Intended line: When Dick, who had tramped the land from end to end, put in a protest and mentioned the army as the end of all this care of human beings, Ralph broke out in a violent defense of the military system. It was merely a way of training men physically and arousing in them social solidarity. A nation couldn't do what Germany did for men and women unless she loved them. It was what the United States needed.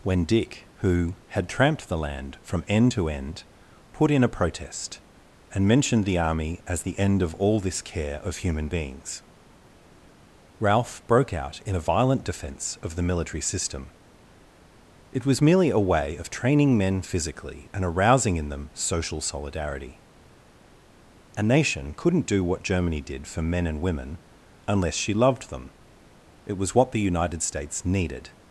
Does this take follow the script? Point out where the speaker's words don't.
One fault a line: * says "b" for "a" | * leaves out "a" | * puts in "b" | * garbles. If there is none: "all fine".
all fine